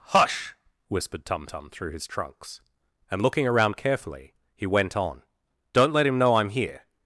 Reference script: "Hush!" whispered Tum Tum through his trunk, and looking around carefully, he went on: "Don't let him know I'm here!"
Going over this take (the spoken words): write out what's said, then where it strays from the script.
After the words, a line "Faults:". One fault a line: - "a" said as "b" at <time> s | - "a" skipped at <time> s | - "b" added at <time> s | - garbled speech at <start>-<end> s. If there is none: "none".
"Hush!" whispered Tum Tum through his trunks, and looking around carefully, he went on: "Don't let him know I'm here!"
Faults:
- "trunk" said as "trunks" at 2.1 s